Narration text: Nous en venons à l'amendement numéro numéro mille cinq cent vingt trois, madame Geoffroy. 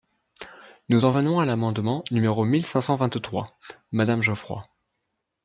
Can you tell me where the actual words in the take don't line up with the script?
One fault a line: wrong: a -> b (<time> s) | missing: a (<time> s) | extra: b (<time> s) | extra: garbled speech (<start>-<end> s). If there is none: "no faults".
missing: numéro (2.5 s)